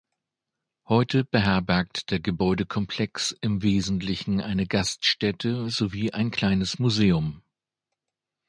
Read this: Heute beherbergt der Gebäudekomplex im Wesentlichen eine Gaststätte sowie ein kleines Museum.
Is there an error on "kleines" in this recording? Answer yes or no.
no